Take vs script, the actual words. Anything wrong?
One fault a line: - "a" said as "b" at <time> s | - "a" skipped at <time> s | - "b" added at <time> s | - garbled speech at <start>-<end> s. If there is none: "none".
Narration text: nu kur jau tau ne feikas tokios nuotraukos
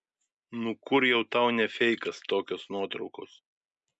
none